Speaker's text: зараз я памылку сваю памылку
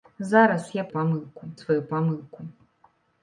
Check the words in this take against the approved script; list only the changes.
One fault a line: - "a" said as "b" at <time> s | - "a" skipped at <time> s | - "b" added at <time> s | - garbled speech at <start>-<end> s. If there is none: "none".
none